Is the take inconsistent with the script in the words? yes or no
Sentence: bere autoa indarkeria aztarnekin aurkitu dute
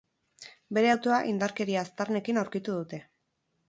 no